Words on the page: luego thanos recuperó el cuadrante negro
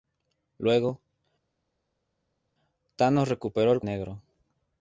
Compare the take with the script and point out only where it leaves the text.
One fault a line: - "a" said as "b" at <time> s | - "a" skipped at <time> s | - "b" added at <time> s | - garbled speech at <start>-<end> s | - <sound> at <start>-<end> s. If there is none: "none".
- "cuadrante" skipped at 3.8 s